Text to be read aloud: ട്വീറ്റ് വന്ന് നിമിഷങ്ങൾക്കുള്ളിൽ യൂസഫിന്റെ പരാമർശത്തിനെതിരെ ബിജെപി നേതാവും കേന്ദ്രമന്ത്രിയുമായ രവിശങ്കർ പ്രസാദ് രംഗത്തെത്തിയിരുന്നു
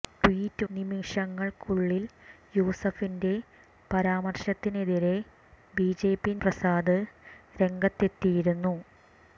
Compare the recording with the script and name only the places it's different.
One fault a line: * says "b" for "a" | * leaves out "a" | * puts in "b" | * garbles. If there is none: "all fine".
* leaves out "വന്ന്"
* leaves out "നേതാവും കേന്ദ്രമന്ത്രിയുമായ രവിശങ്കർ"